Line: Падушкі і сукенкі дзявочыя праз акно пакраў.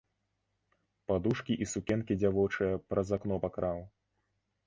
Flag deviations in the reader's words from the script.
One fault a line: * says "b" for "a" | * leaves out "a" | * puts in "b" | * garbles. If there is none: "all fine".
all fine